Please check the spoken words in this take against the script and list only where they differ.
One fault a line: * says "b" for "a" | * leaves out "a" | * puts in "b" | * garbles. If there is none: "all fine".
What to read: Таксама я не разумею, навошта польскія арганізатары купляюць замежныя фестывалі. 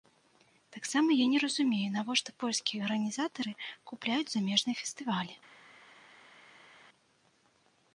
all fine